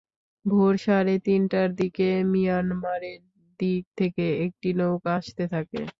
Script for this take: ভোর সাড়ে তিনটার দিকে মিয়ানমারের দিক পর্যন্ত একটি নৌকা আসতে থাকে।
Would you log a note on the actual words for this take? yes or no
yes